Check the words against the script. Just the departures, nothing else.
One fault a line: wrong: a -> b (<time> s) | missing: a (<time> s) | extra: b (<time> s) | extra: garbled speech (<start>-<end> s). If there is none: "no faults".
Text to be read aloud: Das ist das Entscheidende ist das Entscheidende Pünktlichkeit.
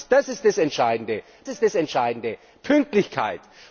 no faults